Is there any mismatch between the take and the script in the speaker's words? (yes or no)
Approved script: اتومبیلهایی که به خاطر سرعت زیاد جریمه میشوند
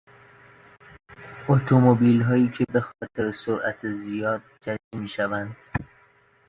no